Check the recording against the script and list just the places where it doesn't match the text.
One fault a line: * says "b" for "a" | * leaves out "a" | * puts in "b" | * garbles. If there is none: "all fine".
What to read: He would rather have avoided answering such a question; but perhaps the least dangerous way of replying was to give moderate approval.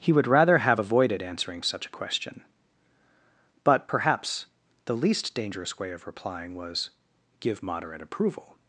* leaves out "to"